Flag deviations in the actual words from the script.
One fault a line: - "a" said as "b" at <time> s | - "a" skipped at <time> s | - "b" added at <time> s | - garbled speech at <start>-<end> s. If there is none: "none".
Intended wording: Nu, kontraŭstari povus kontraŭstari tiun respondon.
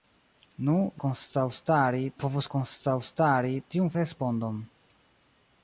none